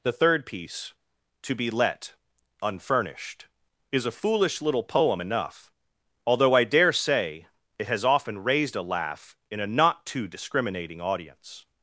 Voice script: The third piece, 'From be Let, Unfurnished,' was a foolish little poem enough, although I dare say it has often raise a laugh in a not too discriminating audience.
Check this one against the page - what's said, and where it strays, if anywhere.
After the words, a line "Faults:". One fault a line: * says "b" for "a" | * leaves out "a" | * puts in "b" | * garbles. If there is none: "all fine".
The third piece, 'To be Let, Unfurnished,' is a foolish little poem enough, although I dare say it has often raised a laugh in a not too discriminating audience.
Faults:
* says "To" for "From"
* says "is" for "was"
* says "raised" for "raise"